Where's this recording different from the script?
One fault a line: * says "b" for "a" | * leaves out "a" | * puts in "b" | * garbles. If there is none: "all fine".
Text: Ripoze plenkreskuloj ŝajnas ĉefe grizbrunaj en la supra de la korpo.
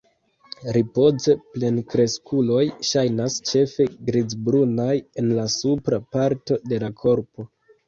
* puts in "parto"